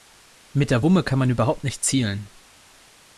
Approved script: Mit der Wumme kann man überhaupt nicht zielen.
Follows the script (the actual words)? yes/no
yes